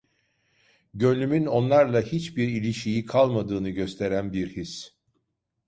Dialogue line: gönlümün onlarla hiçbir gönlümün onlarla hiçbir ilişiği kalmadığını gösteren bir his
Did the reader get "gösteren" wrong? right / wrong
right